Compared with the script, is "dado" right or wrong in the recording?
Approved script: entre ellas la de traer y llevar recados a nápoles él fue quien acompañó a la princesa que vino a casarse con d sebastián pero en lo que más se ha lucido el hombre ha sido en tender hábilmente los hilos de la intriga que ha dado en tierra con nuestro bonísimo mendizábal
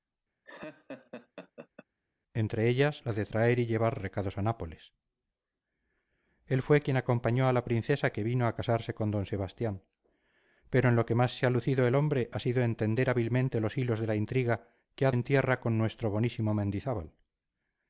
wrong